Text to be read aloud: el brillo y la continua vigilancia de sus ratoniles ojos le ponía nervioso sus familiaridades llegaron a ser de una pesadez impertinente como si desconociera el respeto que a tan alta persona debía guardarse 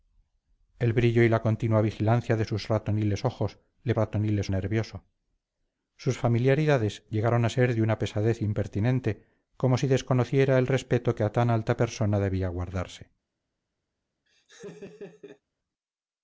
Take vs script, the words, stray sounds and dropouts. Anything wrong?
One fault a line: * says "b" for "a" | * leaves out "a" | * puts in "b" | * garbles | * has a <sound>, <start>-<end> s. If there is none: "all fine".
* says "ratoniles" for "ponía"
* has a laugh, 14.3-15.4 s